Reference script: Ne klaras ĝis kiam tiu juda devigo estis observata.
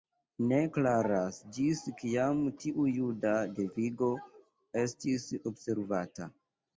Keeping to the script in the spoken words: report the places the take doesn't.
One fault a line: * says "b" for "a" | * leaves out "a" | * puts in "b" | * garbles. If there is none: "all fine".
all fine